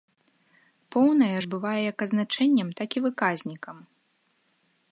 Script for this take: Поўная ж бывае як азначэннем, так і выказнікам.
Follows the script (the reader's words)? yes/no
yes